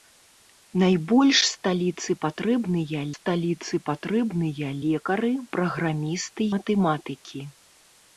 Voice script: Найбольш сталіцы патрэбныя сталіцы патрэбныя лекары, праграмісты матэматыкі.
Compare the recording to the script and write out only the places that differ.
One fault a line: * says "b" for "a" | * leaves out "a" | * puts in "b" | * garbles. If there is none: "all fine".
all fine